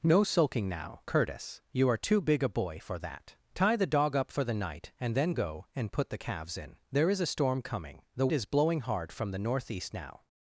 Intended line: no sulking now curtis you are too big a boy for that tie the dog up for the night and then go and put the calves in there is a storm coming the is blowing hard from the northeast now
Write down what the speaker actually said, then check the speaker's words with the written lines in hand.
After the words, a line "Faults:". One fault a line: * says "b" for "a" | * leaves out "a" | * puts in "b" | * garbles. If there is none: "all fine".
no sulking now curtis you are too big a boy for that tie the dog up for the night and then go and put the calves in there is a storm coming the is blowing hard from the northeast now
Faults:
all fine